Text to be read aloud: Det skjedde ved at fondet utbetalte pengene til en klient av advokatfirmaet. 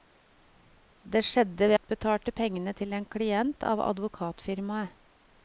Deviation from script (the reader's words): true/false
true